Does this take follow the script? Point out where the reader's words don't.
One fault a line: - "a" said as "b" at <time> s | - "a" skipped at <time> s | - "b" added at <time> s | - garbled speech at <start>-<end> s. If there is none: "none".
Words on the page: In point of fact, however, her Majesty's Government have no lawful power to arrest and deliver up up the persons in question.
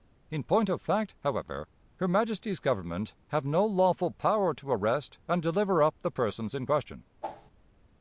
- "up" skipped at 6.0 s